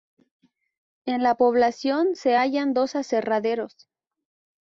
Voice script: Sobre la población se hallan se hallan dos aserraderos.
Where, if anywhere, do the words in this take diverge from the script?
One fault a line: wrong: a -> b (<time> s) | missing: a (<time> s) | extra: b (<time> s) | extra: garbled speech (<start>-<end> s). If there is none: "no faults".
wrong: Sobre -> En (1.1 s)
missing: se hallan (2.7 s)